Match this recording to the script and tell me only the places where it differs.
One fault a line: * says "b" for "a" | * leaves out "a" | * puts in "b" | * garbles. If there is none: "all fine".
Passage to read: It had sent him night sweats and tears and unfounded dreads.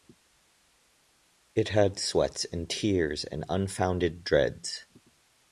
* leaves out "sent him night"